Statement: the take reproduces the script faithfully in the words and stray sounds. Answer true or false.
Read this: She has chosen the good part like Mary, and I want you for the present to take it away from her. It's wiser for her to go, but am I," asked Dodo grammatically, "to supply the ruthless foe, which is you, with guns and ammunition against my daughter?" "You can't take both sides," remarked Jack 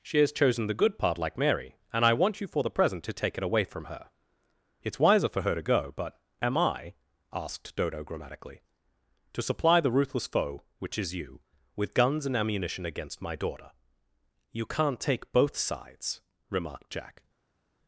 true